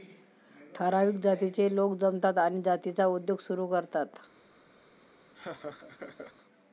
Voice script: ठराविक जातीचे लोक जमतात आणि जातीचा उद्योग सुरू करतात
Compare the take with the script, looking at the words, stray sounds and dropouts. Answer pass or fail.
fail